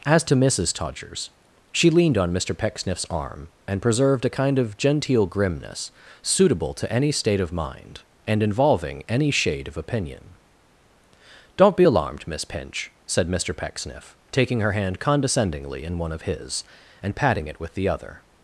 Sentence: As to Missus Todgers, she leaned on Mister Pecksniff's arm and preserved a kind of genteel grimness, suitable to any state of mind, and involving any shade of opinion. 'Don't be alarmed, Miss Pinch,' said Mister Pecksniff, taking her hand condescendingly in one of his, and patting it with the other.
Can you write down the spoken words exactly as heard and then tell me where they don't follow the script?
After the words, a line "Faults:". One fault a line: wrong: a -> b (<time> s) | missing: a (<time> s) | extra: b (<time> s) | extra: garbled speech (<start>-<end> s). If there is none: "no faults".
As to Missus Todgers, she leaned on Mister Pecksniff's arm and preserved a kind of genteel grimness, suitable to any state of mind, and involving any shade of opinion. 'Don't be alarmed, Miss Pinch,' said Mister Pecksniff, taking her hand condescendingly in one of his, and patting it with the other.
Faults:
no faults